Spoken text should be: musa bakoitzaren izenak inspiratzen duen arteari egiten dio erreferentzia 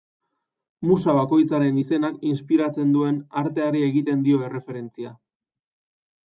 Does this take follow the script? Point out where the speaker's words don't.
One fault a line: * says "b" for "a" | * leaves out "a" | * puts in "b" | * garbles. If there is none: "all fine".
all fine